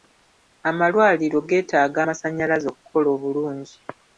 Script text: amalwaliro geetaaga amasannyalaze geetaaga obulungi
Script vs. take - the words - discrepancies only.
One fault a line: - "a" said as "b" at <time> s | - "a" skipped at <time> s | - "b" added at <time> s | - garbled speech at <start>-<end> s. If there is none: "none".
- "geetaaga" said as "okukola" at 2.7 s